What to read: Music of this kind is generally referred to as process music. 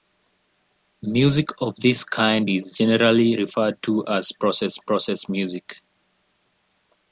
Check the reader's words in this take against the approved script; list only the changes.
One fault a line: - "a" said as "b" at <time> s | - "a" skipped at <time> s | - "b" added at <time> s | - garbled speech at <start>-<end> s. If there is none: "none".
- "process" added at 4.8 s